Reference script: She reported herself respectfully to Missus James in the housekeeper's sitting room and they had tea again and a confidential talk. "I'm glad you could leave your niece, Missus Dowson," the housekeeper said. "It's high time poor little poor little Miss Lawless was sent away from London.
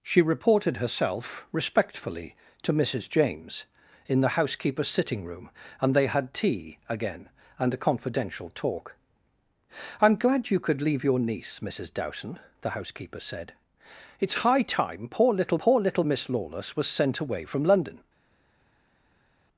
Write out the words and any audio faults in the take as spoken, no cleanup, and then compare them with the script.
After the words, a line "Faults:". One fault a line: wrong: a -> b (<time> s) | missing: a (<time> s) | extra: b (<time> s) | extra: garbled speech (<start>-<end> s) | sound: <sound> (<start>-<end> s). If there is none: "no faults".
She reported herself respectfully to Missus James in the housekeeper's sitting room and they had tea again and a confidential talk. "I'm glad you could leave your niece, Missus Dowson," the housekeeper said. "It's high time poor little poor little Miss Lawless was sent away from London.
Faults:
no faults